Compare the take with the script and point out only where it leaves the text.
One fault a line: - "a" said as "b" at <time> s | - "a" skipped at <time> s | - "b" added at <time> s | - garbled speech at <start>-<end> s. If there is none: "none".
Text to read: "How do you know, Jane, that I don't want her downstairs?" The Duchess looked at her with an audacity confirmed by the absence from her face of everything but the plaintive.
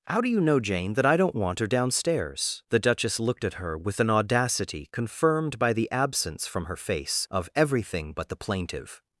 none